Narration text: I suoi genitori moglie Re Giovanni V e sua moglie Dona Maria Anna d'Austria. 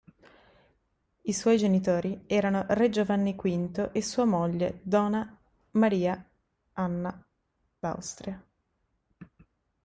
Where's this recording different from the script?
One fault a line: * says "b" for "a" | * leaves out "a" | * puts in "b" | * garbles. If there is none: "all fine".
* says "erano" for "moglie"